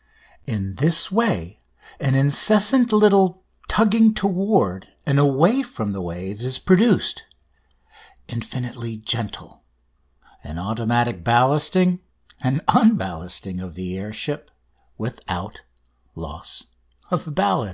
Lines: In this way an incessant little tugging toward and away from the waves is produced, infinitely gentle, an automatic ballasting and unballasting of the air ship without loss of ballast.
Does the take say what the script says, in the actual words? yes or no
yes